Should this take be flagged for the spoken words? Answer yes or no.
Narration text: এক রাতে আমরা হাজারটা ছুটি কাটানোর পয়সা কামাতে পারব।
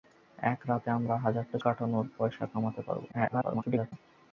yes